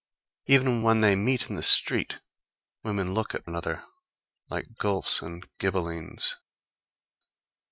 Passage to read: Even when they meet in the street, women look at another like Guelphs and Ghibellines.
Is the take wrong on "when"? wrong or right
right